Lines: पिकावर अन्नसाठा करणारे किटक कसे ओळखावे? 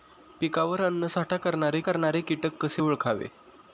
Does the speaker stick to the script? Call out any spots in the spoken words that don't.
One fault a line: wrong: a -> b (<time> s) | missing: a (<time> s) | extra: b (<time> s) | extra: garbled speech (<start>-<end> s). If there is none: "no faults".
extra: करणारे (1.8 s)